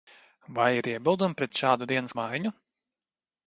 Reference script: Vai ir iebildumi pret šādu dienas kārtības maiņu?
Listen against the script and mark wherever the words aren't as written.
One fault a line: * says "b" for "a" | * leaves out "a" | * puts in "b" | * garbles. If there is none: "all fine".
* leaves out "kārtības"